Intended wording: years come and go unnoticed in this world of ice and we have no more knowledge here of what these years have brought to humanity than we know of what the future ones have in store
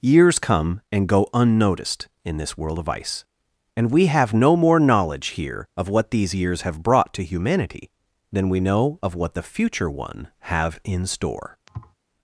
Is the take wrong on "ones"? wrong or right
wrong